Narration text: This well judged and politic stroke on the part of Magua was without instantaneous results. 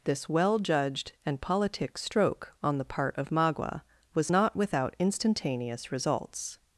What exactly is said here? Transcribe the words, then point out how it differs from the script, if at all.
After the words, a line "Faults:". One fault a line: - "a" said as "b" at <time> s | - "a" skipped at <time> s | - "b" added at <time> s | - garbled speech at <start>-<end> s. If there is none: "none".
This well judged and politic stroke on the part of Magua was not without instantaneous results.
Faults:
- "not" added at 4.3 s